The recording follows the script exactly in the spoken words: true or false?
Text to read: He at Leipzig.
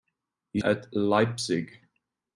true